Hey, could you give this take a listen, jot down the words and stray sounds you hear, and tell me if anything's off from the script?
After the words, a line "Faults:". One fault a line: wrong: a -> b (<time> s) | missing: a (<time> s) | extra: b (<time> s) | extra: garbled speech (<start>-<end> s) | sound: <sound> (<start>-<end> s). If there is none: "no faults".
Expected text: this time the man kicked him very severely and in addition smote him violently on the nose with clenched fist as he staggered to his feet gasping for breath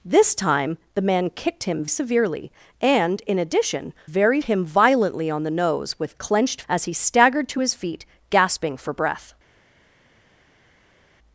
this time the man kicked him severely and in addition very him violently on the nose with clenched as he staggered to his feet gasping for breath
Faults:
missing: very (1.9 s)
wrong: smote -> very (4.0 s)
missing: fist (6.6 s)